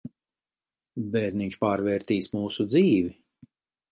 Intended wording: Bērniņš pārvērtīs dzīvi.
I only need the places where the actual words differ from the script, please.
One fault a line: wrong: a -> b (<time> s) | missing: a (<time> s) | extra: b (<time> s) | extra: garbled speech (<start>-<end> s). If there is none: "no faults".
extra: mūsu (2.4 s)